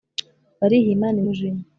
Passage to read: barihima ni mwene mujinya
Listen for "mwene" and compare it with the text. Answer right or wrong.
wrong